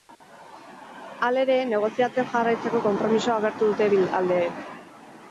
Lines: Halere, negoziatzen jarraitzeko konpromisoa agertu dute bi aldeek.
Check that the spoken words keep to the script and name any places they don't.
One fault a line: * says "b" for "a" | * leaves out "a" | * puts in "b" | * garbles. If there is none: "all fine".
all fine